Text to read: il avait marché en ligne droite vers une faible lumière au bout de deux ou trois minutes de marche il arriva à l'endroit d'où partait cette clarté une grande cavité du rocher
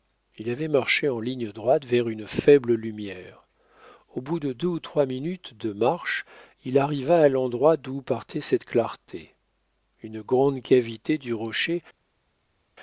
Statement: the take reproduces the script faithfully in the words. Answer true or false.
true